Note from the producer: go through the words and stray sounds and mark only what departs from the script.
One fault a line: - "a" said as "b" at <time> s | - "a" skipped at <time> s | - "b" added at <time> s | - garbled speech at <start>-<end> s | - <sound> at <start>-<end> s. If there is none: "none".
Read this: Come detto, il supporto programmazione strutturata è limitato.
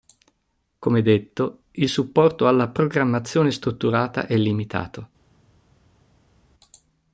- "alla" added at 2.5 s